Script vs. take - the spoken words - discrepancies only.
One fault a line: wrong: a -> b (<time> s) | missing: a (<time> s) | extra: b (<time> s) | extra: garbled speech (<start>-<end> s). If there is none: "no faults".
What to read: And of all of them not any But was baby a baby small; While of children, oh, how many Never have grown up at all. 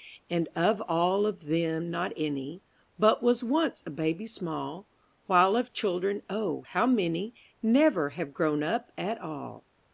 wrong: baby -> once (3.4 s)